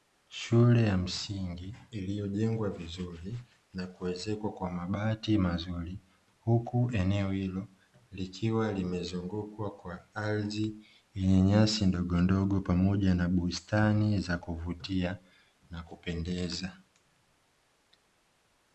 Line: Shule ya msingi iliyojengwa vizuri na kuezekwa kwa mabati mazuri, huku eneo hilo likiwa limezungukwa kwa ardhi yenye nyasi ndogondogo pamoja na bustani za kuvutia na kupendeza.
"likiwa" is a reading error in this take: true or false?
false